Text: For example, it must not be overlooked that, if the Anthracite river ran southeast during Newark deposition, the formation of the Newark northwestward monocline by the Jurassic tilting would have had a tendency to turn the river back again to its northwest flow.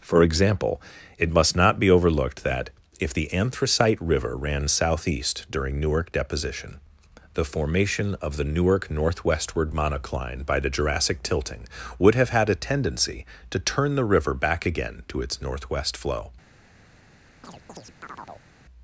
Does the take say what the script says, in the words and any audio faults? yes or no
no